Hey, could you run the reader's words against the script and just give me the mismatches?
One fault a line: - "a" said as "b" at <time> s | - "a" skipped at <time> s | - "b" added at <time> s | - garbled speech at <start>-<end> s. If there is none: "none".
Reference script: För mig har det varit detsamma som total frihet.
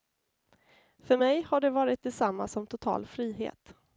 none